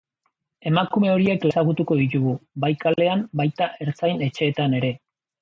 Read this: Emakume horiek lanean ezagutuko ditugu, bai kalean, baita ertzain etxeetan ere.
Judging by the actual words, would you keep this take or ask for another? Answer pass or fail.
fail